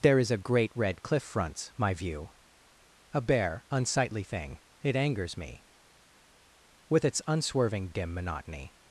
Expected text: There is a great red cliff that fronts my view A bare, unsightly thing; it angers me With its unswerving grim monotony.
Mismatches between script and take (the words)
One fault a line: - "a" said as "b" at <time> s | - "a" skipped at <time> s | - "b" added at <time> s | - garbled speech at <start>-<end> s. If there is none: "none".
- "that" skipped at 1.2 s
- "grim" said as "dim" at 7.9 s